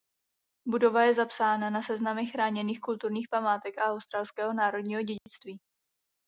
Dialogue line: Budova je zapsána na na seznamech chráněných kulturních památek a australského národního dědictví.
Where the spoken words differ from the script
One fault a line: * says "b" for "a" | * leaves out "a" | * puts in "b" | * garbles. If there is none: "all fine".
* leaves out "na"